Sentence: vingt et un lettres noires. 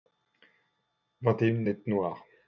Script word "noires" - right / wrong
right